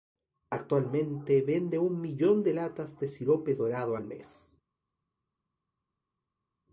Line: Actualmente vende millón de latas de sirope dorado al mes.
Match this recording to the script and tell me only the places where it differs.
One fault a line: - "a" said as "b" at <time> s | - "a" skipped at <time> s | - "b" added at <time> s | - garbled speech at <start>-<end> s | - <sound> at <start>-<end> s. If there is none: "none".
- "un" added at 1.8 s